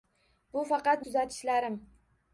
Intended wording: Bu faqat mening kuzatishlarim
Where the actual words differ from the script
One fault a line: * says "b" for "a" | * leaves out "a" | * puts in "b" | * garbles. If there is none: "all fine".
* leaves out "mening"